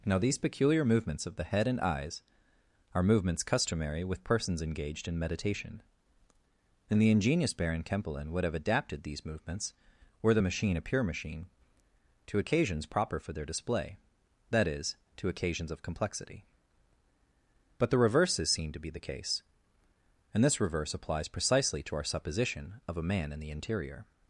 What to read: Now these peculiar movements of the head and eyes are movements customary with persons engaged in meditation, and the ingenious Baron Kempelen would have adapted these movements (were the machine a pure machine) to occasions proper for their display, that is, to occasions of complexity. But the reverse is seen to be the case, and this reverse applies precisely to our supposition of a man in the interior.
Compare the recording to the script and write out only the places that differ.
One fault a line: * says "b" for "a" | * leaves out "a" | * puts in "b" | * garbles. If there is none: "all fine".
all fine